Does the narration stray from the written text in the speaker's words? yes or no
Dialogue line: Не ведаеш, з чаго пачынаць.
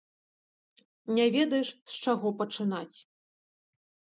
no